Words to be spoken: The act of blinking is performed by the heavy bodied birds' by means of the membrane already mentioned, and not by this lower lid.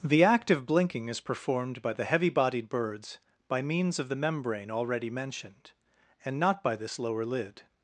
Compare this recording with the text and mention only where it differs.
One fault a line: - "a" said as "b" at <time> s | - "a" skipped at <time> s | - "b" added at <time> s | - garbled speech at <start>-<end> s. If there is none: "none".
none